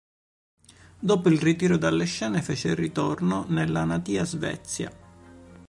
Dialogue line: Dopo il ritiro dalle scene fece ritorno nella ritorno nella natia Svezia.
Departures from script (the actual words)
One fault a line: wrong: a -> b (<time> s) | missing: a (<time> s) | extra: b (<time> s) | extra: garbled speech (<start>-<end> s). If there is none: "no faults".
missing: ritorno nella (3.8 s)